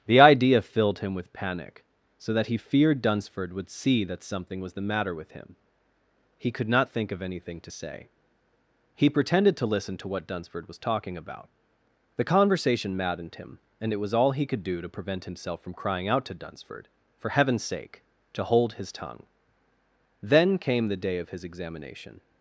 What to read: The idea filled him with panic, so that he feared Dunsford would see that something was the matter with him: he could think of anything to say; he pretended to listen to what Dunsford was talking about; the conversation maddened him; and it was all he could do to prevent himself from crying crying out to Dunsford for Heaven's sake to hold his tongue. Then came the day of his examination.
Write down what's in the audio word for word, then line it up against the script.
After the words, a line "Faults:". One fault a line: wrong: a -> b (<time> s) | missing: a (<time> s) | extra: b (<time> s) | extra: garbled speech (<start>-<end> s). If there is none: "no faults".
The idea filled him with panic, so that he feared Dunsford would see that something was the matter with him: he could not think of anything to say; he pretended to listen to what Dunsford was talking about; the conversation maddened him; and it was all he could do to prevent himself from crying out to Dunsford for Heaven's sake to hold his tongue. Then came the day of his examination.
Faults:
extra: not (6.7 s)
missing: crying (16.1 s)